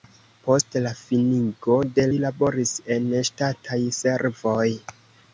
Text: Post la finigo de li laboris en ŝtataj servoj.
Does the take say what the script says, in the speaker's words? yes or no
yes